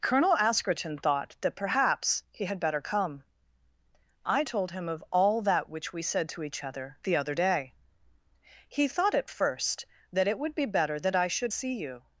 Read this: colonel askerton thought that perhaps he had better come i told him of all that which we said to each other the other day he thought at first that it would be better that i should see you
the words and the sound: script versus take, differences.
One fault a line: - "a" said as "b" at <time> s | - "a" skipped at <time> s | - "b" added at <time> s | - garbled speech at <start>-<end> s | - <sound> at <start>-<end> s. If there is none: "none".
none